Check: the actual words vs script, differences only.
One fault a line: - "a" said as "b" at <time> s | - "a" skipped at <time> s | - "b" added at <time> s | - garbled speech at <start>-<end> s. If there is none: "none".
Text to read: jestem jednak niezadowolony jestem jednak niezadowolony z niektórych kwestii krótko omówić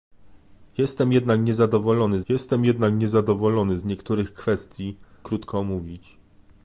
none